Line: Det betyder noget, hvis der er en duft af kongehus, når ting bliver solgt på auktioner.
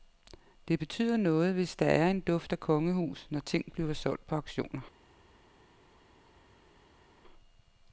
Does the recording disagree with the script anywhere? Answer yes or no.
no